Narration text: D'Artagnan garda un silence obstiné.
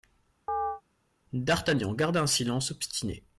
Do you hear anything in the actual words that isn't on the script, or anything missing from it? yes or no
no